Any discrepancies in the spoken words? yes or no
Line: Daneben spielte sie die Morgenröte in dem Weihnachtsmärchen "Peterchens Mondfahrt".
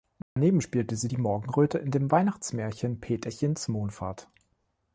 no